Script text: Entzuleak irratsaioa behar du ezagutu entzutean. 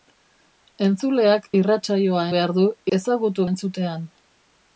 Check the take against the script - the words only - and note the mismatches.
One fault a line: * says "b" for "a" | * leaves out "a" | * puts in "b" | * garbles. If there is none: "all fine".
all fine